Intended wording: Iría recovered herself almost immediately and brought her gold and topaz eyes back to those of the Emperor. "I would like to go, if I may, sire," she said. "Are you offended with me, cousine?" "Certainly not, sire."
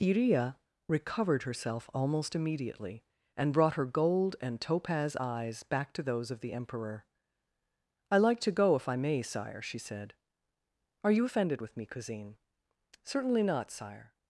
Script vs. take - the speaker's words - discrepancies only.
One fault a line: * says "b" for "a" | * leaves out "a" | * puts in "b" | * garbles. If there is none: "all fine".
* leaves out "would"